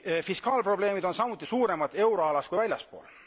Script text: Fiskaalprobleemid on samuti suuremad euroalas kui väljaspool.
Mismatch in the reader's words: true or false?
false